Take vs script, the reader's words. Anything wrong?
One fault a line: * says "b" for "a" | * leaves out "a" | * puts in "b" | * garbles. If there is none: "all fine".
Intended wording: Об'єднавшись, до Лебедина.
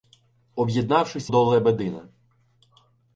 all fine